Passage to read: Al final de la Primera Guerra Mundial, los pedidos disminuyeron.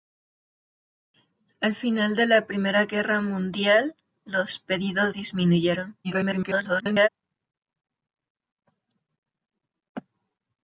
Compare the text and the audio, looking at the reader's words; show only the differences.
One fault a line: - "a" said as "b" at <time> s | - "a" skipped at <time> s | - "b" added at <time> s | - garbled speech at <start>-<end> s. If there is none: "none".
- garbled speech at 6.0-7.1 s